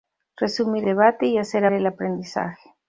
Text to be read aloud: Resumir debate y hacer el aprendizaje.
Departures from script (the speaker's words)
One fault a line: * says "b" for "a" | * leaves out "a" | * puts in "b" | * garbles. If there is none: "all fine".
all fine